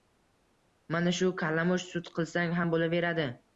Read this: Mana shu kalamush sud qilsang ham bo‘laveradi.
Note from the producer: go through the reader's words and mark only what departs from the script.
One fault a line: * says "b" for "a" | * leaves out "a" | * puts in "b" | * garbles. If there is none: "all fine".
all fine